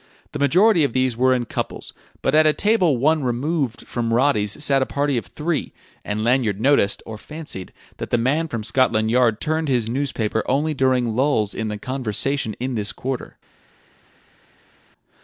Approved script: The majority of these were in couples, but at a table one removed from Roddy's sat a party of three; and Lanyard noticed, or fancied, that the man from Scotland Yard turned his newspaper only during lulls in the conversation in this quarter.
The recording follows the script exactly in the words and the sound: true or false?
true